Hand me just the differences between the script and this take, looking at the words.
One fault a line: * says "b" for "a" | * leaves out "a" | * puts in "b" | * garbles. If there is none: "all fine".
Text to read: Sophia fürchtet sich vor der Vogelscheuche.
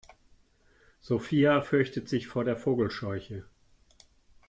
all fine